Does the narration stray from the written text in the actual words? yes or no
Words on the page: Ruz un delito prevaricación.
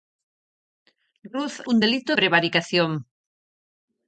no